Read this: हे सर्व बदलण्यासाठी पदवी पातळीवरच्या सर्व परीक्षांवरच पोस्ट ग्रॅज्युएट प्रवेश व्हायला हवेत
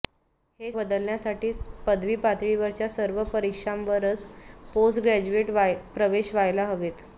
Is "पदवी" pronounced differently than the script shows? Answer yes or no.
no